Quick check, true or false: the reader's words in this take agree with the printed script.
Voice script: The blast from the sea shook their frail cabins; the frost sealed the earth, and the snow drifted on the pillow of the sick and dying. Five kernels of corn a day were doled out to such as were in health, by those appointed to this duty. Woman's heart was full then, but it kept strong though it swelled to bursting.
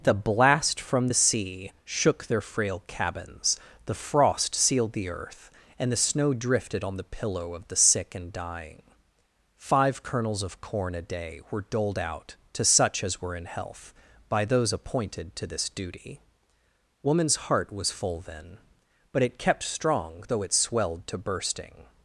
true